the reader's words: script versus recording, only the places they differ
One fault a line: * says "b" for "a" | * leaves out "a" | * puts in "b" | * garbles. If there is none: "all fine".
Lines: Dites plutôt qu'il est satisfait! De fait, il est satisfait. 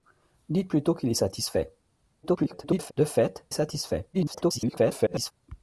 * garbles
* leaves out "il"
* garbles